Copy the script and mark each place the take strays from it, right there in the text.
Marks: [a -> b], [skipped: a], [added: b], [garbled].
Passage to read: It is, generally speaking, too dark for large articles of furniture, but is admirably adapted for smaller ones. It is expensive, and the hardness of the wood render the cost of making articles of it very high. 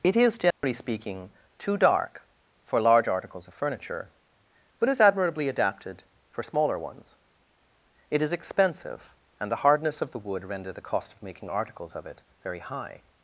It is, generally speaking, too dark for large articles of furniture, but is admirably adapted for smaller ones. It is expensive, and the hardness of the wood render the cost of making articles of it very high.